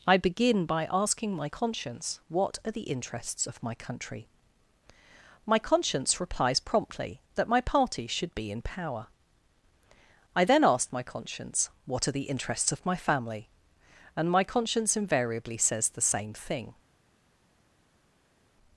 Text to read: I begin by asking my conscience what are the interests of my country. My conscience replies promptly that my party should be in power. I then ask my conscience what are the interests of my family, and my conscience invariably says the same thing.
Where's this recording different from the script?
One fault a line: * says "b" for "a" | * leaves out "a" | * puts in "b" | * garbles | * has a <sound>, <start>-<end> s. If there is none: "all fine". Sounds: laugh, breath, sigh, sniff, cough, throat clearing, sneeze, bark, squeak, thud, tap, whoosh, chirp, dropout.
all fine